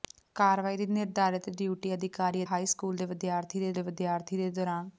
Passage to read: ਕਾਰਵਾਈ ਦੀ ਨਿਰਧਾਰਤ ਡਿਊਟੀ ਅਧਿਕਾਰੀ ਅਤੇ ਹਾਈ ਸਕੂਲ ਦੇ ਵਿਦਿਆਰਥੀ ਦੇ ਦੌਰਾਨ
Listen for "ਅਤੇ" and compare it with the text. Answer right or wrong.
wrong